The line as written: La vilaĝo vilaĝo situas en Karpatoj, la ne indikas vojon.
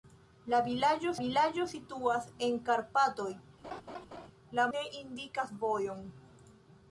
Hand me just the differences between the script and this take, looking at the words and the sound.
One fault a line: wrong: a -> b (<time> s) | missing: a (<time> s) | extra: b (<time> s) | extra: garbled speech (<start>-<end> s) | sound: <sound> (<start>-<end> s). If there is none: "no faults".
sound: laugh (3.6-4.3 s)